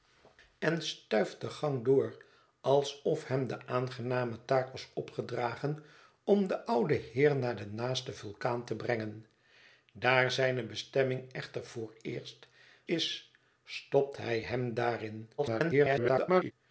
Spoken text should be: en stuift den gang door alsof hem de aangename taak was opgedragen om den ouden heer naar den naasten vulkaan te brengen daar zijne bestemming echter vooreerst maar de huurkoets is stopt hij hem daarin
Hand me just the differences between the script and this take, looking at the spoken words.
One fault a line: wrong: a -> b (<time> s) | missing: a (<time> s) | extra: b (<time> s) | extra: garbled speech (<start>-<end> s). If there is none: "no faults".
missing: maar de huurkoets (12.5 s)
extra: garbled speech (15.4-16.5 s)